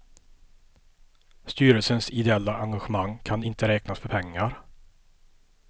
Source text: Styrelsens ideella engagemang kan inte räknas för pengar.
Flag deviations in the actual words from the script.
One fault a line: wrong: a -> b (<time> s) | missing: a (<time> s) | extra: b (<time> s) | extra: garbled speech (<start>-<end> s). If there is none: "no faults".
no faults